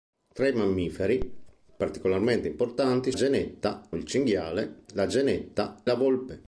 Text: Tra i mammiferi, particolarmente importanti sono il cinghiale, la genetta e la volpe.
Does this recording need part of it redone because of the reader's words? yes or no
yes